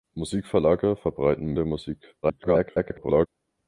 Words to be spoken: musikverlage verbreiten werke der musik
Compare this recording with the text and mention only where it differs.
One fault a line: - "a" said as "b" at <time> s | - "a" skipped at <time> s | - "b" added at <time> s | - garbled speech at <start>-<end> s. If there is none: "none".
- "werke" skipped at 1.6 s
- garbled speech at 2.2-3.3 s